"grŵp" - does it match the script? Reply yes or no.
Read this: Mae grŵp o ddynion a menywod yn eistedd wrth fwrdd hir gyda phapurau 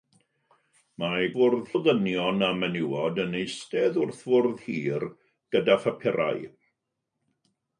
no